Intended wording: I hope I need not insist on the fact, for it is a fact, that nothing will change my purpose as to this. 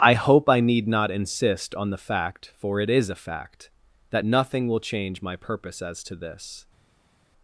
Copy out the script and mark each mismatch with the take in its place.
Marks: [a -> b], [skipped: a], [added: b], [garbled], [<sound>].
I hope I need not insist on the fact, for it is a fact, that nothing will change my purpose as to this.